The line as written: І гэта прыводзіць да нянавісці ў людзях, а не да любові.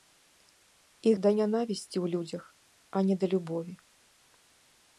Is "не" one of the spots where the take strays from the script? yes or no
no